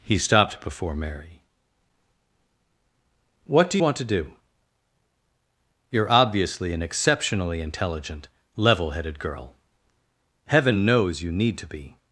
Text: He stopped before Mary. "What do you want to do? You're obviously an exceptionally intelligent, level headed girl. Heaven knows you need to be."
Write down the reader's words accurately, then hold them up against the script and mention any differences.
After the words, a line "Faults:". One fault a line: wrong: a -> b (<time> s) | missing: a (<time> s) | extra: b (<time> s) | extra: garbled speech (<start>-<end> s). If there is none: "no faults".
He stopped before Mary. "What do want to do? You're obviously an exceptionally intelligent, level headed girl. Heaven knows you need to be."
Faults:
missing: you (3.8 s)